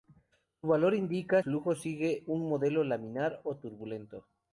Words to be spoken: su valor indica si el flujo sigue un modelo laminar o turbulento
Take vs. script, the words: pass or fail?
fail